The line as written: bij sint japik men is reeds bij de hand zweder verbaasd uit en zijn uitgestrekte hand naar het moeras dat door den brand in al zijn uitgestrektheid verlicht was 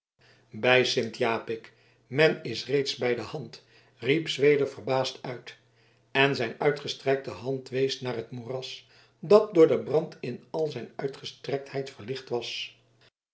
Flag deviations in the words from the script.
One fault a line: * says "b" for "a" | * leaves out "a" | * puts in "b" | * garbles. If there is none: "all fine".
* puts in "riep"
* puts in "wees"